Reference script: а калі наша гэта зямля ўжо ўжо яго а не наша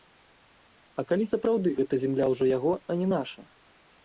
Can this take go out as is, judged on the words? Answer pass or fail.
fail